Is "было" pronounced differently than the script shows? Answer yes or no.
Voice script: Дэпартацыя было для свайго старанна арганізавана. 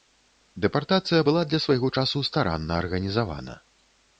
yes